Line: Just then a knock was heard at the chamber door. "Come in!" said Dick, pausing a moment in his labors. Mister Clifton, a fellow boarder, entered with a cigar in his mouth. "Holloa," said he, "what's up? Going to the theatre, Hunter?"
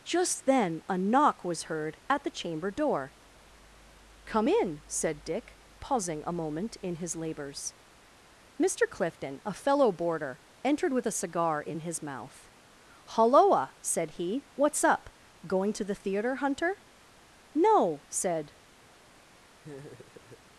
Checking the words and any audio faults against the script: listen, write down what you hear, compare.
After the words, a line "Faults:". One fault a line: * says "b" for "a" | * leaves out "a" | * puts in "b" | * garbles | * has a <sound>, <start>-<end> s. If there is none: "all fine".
Just then a knock was heard at the chamber door. "Come in!" said Dick, pausing a moment in his labors. Mister Clifton, a fellow boarder, entered with a cigar in his mouth. "Holloa," said he, "what's up? Going to the theatre, Hunter?" "No," said
Faults:
* puts in "No said"
* has a laugh, 19.6-20.4 s